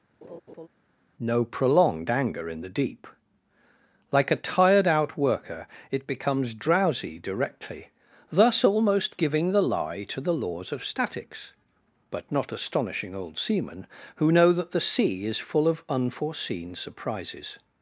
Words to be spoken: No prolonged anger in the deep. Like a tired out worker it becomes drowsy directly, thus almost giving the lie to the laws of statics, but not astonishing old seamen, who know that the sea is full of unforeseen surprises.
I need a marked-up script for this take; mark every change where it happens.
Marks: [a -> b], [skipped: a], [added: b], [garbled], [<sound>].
[laugh] No prolonged anger in the deep. Like a tired out worker it becomes drowsy directly, thus almost giving the lie to the laws of statics, but not astonishing old seamen, who know that the sea is full of unforeseen surprises.